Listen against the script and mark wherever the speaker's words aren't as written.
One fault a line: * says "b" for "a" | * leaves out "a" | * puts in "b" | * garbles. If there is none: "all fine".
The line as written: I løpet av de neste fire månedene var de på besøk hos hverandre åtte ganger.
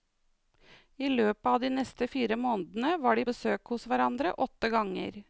* leaves out "på"